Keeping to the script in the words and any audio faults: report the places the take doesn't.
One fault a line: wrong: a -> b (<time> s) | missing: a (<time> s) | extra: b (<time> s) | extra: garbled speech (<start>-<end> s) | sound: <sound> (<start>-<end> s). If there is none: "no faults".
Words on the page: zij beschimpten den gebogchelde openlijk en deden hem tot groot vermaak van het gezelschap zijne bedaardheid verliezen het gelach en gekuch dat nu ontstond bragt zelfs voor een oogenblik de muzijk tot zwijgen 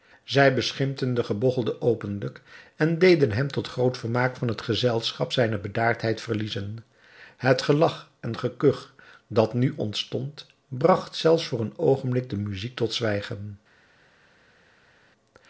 no faults